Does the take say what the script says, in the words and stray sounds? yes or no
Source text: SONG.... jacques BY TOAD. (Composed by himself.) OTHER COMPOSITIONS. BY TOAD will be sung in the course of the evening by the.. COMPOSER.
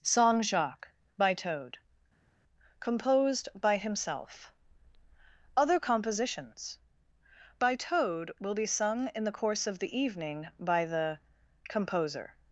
yes